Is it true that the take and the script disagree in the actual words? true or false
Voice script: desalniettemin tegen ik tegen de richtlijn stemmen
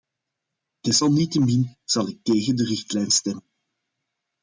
true